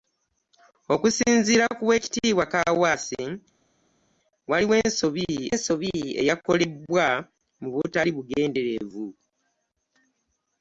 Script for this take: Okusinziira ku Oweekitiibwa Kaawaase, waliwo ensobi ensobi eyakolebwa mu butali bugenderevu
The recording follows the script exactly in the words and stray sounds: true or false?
true